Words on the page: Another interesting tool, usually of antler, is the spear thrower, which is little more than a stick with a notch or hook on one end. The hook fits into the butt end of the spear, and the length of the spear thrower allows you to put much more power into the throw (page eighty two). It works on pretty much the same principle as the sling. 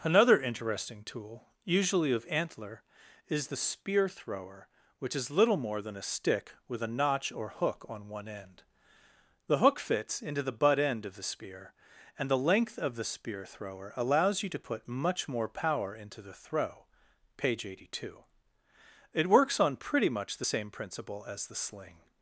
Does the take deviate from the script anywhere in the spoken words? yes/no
no